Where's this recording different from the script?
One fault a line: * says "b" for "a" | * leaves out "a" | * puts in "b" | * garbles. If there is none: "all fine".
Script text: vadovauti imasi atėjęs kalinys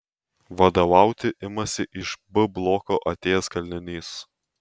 * puts in "iš b bloko"